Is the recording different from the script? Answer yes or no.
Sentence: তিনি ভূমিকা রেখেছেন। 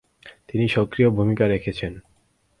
yes